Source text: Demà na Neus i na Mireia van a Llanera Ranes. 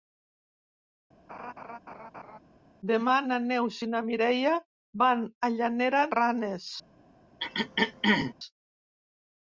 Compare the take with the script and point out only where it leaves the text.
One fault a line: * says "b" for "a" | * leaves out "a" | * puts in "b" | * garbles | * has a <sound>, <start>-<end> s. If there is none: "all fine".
* has a laugh, 1.3-2.4 s
* has a throat clearing, 7.4-8.3 s